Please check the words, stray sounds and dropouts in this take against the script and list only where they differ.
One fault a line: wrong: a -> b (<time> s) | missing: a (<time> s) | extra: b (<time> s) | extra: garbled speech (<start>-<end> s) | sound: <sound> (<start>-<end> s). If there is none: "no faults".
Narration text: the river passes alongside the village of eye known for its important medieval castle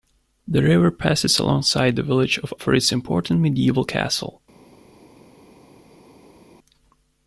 missing: eye known (2.5 s)